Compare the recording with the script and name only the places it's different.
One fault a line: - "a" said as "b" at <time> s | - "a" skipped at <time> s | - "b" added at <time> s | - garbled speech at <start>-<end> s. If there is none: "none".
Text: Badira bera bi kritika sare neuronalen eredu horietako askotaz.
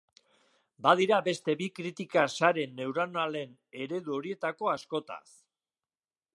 - "bera" said as "beste" at 1.3 s